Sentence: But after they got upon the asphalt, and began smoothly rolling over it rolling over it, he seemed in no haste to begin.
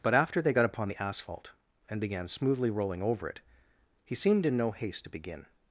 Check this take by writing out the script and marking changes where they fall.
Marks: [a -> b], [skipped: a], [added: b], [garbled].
But after they got upon the asphalt, and began smoothly rolling over it [skipped: rolling over it,] he seemed in no haste to begin.